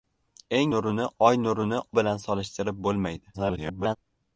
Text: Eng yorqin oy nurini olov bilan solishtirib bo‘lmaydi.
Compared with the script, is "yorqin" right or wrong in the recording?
wrong